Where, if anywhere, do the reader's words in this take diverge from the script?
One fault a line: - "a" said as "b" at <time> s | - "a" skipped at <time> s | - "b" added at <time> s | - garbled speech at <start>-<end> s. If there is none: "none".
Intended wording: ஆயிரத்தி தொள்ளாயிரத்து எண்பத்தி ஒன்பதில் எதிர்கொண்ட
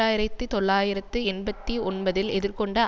none